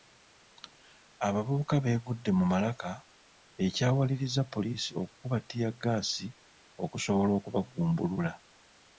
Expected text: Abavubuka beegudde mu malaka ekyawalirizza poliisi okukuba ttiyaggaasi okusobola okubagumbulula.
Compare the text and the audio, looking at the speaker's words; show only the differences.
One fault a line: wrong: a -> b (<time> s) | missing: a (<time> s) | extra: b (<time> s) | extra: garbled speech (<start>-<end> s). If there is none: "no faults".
no faults